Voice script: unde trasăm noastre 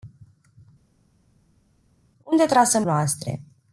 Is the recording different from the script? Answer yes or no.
no